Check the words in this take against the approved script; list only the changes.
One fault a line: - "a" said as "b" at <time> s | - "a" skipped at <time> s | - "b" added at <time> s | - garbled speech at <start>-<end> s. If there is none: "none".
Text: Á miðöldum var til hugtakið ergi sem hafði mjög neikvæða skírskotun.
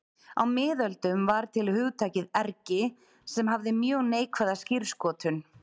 none